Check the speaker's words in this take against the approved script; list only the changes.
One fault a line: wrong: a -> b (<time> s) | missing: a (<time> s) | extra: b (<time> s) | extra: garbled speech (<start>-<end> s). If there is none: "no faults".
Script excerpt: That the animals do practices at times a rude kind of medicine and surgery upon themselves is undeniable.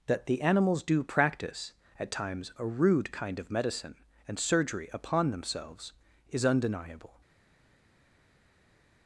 wrong: practices -> practice (1.0 s)